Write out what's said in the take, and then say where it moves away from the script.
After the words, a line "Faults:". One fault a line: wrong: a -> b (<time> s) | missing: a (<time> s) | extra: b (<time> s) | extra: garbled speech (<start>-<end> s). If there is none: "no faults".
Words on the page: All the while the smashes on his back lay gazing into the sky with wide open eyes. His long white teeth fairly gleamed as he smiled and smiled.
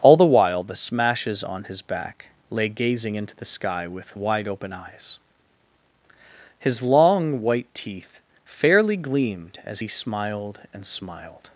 All the while the smashes on his back lay gazing into the sky with wide open eyes. His long white teeth fairly gleamed as he smiled and smiled.
Faults:
no faults